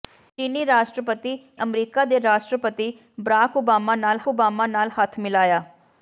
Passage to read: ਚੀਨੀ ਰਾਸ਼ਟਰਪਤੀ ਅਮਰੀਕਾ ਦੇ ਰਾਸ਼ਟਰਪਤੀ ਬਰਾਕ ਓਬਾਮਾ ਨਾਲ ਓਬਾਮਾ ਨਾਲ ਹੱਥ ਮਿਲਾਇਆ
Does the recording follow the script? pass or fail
pass